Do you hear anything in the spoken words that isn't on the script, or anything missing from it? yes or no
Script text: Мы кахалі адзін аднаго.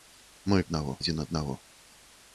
yes